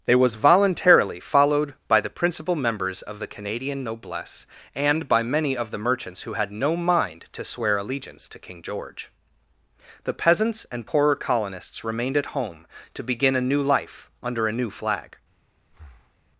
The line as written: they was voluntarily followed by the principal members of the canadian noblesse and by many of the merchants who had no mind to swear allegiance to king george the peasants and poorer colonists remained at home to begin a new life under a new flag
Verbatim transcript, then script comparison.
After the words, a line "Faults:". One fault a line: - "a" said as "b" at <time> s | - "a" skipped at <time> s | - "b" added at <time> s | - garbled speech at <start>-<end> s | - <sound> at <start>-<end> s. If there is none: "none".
they was voluntarily followed by the principal members of the canadian noblesse and by many of the merchants who had no mind to swear allegiance to king george the peasants and poorer colonists remained at home to begin a new life under a new flag
Faults:
- breath at 15.7-16.2 s